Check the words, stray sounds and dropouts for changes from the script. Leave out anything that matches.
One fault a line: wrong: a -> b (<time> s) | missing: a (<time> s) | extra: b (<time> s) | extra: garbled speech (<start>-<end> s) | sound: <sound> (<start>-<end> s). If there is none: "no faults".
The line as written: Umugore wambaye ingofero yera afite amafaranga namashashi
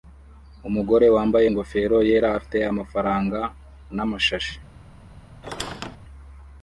sound: squeak (5.4-6.0 s)